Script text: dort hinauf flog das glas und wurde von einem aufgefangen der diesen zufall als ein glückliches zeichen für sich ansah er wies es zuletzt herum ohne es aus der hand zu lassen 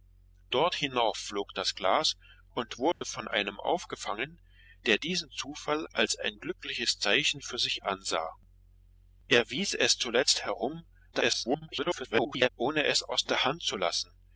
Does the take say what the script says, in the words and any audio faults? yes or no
no